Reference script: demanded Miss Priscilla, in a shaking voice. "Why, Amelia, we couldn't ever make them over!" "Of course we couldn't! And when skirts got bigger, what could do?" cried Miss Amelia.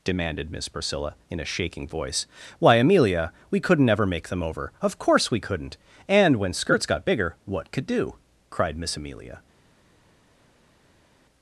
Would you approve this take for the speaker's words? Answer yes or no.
yes